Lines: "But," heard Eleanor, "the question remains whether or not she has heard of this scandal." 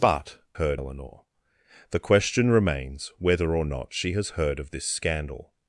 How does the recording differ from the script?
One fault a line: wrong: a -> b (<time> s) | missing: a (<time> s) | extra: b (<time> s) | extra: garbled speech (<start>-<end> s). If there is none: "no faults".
no faults